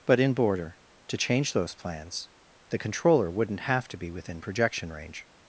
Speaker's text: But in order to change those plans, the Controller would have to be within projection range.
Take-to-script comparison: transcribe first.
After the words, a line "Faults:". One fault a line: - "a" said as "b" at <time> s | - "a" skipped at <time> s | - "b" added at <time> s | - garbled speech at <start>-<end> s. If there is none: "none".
But in border to change those plans, the Controller wouldn't have to be within projection range.
Faults:
- "order" said as "border" at 0.3 s
- "would" said as "wouldn't" at 3.3 s